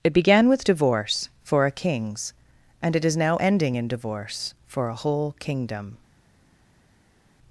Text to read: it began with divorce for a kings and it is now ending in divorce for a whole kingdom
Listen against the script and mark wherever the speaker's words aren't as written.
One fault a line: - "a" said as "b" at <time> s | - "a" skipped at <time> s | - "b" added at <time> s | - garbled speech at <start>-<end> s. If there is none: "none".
none